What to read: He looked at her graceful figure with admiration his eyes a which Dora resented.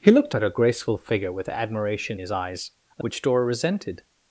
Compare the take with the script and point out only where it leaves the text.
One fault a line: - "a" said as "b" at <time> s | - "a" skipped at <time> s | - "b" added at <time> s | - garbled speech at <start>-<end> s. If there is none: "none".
none